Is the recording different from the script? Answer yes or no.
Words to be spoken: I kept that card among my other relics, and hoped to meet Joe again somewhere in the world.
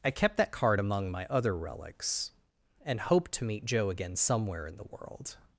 no